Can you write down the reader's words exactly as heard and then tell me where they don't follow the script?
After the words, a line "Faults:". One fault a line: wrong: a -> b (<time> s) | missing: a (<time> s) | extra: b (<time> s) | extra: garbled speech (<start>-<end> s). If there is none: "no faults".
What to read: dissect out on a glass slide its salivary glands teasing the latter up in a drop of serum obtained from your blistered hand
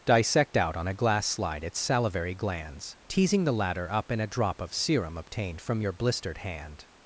dissect out on a glass slide its salivary glands teasing the latter up in a drop of serum obtained from your blistered hand
Faults:
no faults